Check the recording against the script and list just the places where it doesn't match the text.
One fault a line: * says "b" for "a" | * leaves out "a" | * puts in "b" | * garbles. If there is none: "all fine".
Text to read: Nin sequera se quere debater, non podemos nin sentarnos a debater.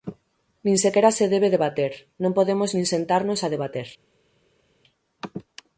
* says "debe" for "quere"